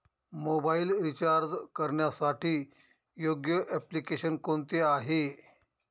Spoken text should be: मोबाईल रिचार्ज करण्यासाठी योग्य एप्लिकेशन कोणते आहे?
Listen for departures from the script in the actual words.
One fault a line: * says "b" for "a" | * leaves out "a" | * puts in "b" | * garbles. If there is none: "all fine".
all fine